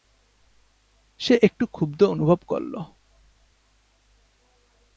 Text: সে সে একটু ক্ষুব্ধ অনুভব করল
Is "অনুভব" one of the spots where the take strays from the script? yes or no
no